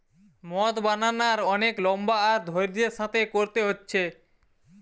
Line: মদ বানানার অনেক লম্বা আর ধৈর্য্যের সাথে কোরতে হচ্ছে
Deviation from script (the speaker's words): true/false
false